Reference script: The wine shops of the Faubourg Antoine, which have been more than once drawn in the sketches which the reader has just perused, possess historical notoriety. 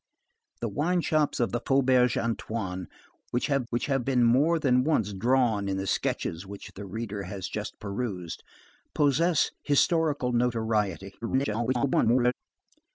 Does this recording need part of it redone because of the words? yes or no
yes